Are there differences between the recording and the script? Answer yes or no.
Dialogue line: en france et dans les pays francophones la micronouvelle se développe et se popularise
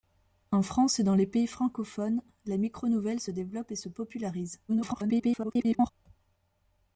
yes